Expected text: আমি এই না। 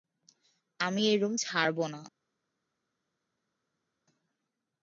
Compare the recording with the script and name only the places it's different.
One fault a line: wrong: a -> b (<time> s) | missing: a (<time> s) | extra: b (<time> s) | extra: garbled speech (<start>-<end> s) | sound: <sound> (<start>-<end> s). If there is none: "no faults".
extra: রুম ছাড়ব (1.2 s)